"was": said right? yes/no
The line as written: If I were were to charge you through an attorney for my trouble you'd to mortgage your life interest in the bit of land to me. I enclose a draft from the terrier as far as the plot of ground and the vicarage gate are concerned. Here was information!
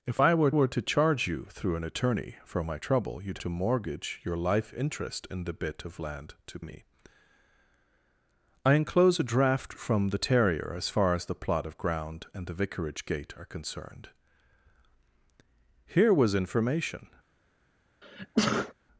yes